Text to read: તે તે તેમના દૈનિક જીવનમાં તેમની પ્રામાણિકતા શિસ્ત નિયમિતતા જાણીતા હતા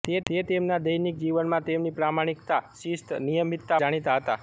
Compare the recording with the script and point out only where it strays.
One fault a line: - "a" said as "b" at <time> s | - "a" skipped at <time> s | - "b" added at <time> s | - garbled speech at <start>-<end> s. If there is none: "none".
none